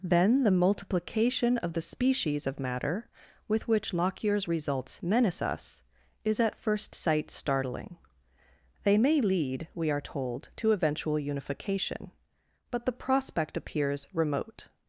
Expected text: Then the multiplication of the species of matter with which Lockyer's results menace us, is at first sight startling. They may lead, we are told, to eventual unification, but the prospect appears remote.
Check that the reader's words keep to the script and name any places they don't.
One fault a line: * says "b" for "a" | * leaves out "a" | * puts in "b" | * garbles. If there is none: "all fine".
all fine